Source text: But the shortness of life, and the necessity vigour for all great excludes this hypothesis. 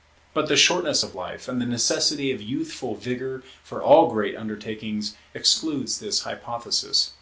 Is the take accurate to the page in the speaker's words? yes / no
no